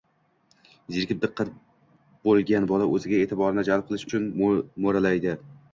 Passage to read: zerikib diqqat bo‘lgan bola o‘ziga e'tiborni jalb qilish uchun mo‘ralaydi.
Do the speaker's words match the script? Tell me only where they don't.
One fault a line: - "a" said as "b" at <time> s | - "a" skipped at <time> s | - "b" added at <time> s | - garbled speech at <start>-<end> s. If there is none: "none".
none